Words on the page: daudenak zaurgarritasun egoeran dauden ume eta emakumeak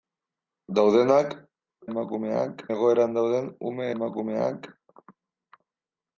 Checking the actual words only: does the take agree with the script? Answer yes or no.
no